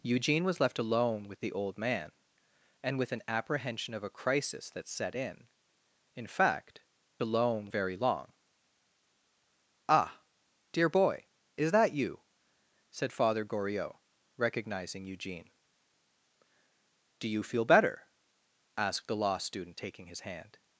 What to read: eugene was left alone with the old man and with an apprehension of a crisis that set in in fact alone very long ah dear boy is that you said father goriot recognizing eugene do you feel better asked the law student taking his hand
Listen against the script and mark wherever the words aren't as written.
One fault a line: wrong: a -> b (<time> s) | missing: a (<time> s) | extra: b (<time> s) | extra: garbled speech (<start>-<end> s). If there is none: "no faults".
no faults